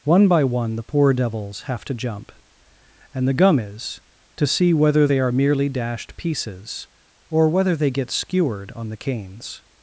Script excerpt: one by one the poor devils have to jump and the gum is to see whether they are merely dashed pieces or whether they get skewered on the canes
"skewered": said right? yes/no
yes